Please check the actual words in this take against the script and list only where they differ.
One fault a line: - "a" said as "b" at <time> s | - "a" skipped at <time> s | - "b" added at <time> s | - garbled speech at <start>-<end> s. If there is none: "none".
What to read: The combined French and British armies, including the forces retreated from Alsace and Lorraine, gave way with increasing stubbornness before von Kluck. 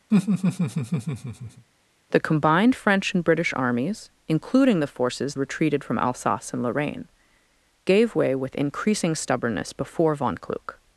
none